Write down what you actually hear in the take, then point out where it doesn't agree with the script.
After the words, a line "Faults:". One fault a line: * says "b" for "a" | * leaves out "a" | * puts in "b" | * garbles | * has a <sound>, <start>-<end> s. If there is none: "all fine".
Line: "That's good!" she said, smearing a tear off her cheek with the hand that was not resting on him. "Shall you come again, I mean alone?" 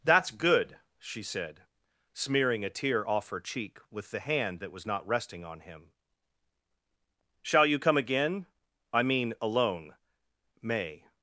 "That's good!" she said, smearing a tear off her cheek with the hand that was not resting on him. "Shall you come again, I mean alone?" "May
Faults:
* puts in "May"